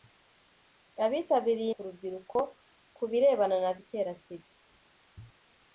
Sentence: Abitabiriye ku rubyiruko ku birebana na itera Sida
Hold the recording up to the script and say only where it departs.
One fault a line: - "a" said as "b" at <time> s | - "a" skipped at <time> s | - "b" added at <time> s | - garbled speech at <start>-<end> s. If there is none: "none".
none